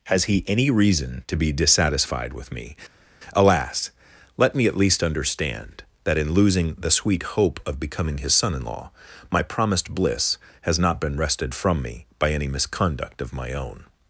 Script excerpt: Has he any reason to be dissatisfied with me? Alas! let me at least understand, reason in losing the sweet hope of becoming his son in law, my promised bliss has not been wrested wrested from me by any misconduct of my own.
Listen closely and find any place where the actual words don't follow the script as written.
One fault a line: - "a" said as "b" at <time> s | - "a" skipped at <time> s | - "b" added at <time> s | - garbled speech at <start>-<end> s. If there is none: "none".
- "reason" said as "that" at 6.0 s
- "wrested" skipped at 11.5 s